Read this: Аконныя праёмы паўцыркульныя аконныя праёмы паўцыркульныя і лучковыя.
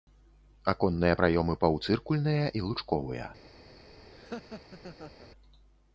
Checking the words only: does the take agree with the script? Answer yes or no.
no